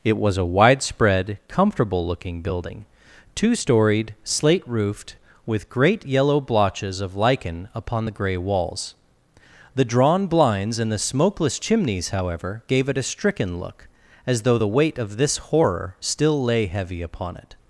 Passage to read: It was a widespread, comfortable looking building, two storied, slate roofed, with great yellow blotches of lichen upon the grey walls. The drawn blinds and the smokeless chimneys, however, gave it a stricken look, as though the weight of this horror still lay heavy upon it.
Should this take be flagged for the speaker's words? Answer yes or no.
no